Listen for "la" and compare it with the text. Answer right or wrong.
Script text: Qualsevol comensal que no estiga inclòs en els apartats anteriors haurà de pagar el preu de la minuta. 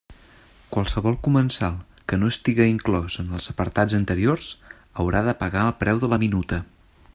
right